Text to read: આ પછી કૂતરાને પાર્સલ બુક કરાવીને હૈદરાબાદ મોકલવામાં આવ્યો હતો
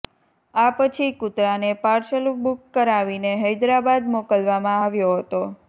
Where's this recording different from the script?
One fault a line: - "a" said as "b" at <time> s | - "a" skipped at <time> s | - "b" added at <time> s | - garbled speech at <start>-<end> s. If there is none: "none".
none